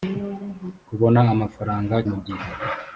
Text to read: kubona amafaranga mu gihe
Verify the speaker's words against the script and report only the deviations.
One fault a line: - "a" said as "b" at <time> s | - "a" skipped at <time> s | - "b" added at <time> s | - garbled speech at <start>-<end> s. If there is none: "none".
none